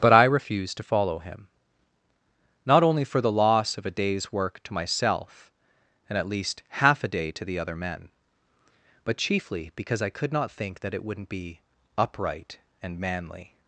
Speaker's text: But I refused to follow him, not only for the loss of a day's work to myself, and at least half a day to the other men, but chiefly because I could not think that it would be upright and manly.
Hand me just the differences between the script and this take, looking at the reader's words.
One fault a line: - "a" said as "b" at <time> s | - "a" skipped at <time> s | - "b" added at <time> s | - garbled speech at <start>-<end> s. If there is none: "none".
- "would" said as "wouldn't" at 11.0 s